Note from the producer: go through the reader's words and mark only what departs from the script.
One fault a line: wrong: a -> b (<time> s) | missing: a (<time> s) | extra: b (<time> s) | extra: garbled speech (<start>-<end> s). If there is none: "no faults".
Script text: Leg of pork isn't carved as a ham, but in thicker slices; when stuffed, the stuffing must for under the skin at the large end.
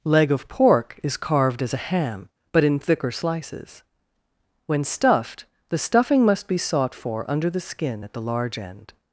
wrong: isn't -> is (1.0 s)
extra: be sought (6.5 s)